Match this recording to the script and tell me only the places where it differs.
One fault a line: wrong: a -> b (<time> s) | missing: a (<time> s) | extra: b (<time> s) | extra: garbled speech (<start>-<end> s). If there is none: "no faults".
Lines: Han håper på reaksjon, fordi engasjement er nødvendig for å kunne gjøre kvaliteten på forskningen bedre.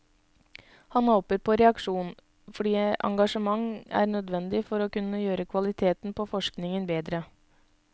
no faults